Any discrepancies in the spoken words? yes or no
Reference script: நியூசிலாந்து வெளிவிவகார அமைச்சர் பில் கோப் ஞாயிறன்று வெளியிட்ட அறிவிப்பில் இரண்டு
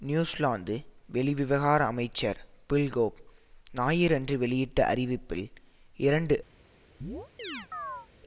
no